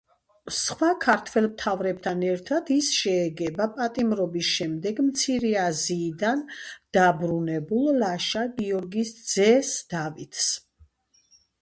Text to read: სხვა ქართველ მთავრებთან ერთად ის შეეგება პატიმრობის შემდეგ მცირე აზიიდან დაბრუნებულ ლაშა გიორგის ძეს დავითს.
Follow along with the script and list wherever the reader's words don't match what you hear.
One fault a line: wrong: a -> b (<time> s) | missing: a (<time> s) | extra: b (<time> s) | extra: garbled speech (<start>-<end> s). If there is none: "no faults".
no faults